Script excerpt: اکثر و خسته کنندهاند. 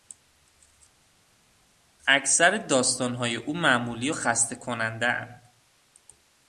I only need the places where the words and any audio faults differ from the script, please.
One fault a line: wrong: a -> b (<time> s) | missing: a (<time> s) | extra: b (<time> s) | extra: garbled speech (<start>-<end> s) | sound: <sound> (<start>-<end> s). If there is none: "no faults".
extra: داستانهای او معمولی (2.6 s)